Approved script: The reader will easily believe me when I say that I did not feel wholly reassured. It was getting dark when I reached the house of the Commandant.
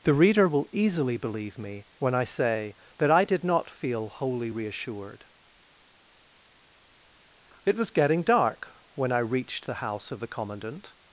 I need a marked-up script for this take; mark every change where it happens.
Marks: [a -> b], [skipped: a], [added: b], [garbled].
The reader will easily believe me when I say that I did not feel wholly reassured. It was getting dark when I reached the house of the Commandant.